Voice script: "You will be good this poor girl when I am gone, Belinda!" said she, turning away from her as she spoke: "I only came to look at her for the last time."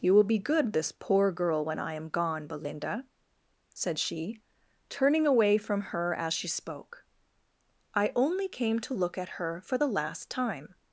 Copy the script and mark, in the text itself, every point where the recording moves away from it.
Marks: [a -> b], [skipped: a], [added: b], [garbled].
"You will be good this poor girl when I am gone, Belinda!" said she, turning away from her as she spoke: "I only came to look at her for the last time."